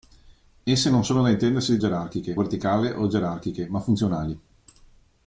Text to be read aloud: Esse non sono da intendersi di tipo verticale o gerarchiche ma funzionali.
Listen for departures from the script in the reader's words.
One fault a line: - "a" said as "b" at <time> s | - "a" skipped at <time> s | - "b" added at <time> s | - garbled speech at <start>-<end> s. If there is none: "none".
- "tipo" said as "gerarchiche" at 1.8 s